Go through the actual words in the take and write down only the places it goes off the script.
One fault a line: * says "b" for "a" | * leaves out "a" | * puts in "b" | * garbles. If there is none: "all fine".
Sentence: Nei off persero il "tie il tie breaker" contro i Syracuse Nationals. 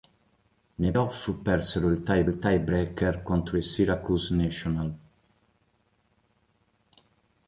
all fine